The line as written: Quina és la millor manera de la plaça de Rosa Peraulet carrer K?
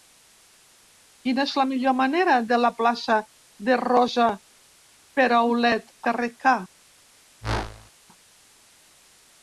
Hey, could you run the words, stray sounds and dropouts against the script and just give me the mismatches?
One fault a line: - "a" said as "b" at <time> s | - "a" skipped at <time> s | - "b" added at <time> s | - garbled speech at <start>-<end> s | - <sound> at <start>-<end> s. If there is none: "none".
- whoosh at 7.4-7.9 s